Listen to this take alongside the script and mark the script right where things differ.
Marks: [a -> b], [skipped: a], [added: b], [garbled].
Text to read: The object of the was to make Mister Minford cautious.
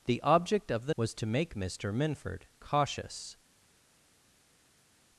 The object of the was to make Mister Minford cautious.